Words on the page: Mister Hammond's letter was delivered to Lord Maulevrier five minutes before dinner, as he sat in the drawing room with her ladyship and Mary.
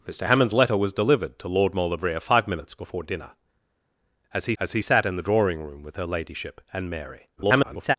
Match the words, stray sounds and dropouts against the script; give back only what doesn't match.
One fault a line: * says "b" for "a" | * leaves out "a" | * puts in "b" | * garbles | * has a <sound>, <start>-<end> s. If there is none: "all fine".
* puts in "as he"
* garbles